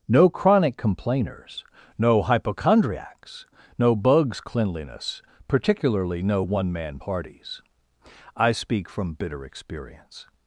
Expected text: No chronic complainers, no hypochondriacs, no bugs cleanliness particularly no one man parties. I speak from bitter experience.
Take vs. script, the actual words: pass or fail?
pass